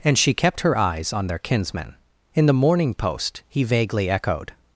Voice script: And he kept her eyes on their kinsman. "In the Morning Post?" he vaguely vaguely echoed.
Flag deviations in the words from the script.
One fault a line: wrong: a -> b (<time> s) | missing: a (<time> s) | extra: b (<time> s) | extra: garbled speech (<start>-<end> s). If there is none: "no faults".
wrong: he -> she (0.2 s)
missing: vaguely (4.1 s)